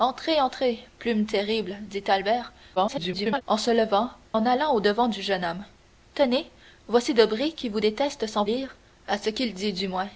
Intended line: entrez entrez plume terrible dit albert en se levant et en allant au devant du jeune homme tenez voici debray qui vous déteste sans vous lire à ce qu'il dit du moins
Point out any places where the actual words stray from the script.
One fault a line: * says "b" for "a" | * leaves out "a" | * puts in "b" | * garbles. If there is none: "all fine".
* garbles
* leaves out "et"
* leaves out "vous"